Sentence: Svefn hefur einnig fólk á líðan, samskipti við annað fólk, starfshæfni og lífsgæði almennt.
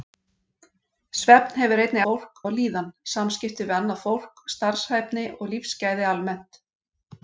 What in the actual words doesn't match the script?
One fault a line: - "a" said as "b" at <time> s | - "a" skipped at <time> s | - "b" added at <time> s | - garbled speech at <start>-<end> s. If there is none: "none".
none